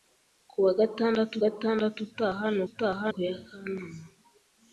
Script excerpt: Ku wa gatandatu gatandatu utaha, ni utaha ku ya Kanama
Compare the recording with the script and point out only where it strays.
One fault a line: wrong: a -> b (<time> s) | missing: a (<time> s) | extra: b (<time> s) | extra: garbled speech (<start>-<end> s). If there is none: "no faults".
no faults